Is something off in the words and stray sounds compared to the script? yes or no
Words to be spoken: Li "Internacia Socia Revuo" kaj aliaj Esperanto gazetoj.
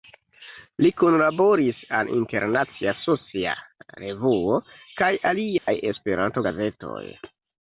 yes